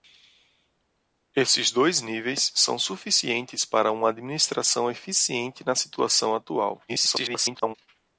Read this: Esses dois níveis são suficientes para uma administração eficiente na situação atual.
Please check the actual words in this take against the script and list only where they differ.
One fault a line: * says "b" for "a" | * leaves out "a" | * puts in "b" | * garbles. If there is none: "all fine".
* garbles